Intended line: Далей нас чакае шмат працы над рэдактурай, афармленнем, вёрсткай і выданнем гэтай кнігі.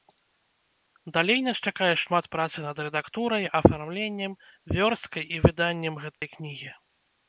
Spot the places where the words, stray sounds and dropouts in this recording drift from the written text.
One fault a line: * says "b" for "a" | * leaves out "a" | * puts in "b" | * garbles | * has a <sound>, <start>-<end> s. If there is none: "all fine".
* has a dropout, 6.1-6.2 s